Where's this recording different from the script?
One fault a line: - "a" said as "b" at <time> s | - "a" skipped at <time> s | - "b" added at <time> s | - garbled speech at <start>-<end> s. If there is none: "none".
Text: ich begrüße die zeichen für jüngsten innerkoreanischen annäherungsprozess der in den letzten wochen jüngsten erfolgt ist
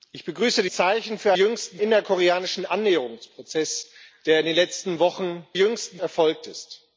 none